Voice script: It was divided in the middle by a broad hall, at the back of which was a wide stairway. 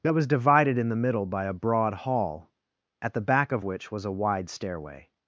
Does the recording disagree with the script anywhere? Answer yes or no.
yes